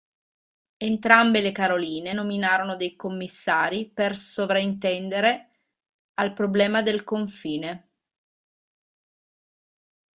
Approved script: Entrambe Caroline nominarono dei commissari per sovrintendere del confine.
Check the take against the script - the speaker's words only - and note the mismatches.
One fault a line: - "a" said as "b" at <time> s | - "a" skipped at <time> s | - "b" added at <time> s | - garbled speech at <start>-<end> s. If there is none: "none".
- "le" added at 1.4 s
- "al problema" added at 6.1 s